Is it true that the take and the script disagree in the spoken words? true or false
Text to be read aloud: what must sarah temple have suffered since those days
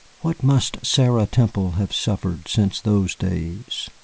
false